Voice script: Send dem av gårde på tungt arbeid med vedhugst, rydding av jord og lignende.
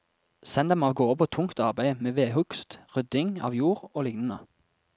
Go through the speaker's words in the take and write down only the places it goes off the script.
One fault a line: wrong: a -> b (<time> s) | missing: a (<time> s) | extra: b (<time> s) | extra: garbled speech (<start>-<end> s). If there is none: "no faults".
no faults